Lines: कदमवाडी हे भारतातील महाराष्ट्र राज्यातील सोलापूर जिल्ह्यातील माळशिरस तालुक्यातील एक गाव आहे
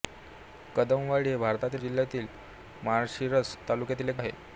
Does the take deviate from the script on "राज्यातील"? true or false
true